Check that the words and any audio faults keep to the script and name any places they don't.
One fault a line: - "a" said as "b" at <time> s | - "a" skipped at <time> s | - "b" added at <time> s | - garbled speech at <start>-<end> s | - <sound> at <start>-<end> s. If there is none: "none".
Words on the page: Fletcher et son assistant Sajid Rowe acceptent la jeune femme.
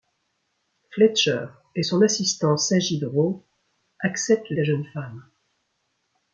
none